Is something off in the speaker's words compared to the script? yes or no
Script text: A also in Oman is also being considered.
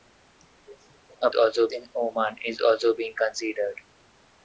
no